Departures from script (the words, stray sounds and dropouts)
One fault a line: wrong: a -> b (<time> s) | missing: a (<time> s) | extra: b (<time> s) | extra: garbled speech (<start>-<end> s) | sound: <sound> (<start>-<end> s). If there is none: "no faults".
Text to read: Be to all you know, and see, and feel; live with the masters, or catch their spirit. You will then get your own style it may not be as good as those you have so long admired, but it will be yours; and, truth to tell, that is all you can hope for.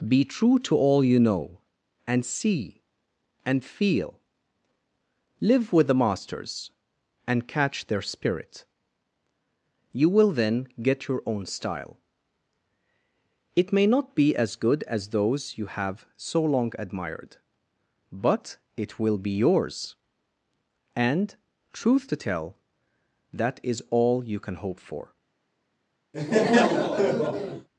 extra: true (0.2 s)
wrong: or -> and (7.3 s)
sound: laugh (26.1-27.7 s)